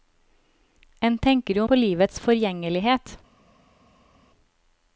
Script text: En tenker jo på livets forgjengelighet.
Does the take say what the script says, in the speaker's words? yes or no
yes